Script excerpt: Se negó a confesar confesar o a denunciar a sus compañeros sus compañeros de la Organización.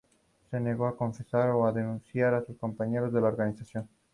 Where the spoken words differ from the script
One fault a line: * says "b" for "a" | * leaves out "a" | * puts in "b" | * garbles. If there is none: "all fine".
* leaves out "confesar"
* leaves out "sus compañeros"